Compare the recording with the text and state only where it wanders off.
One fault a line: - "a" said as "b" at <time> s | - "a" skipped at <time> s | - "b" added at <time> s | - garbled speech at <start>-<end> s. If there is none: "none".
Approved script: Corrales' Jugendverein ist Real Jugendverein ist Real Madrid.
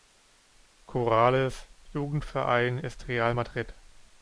- "Jugendverein ist Real" skipped at 3.3 s